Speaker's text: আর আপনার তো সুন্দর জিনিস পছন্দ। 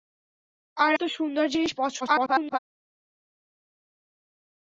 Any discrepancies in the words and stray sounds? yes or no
yes